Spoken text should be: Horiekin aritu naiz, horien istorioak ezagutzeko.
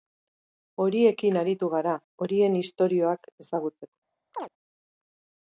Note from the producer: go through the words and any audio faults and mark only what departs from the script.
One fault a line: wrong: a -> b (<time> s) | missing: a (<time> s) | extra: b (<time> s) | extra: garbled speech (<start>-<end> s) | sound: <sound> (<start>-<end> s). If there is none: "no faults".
wrong: naiz -> gara (1.8 s)
sound: chirp (4.3-4.5 s)